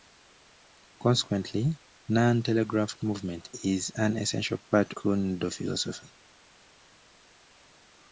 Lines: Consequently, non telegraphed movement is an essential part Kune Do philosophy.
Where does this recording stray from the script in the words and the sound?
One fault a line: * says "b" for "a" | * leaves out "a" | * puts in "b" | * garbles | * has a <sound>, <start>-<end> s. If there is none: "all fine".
all fine